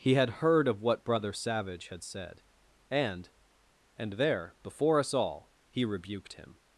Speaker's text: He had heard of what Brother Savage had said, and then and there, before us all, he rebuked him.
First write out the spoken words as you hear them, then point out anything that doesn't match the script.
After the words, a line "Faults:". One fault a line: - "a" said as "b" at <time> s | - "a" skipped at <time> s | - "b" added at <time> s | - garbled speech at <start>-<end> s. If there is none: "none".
He had heard of what Brother Savage had said, and and there, before us all, he rebuked him.
Faults:
- "then" skipped at 3.3 s